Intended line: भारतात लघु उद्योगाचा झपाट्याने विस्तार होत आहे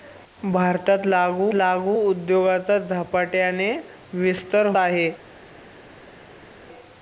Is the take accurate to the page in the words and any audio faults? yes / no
no